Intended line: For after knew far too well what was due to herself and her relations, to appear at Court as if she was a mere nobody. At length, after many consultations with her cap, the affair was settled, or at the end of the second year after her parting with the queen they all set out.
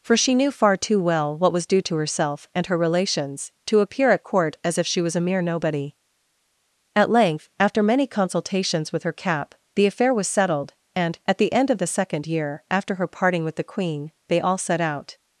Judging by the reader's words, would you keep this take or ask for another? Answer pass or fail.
fail